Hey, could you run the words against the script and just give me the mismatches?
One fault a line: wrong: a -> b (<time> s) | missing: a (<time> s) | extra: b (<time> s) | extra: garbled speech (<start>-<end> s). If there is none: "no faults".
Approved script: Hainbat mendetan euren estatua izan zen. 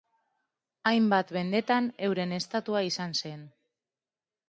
no faults